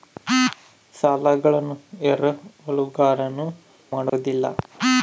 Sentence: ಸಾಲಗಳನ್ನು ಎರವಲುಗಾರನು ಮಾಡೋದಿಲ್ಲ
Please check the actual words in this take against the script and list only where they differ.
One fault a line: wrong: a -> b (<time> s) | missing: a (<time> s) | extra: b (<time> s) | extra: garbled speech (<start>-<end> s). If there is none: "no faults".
no faults